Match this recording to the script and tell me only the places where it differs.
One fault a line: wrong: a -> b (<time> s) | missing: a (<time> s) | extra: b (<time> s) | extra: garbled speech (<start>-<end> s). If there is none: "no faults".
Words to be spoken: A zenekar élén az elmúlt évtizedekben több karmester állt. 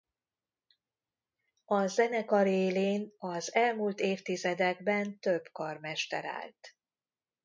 no faults